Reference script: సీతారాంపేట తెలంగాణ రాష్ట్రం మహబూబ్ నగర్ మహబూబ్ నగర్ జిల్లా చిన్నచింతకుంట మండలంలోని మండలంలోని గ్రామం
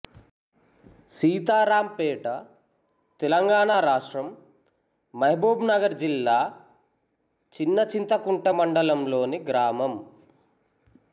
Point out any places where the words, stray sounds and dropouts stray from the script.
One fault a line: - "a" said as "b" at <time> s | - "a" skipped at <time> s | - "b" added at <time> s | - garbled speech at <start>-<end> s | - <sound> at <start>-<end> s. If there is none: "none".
- "మహబూబ్ నగర్" skipped at 5.9 s
- "మండలంలోని" skipped at 9.4 s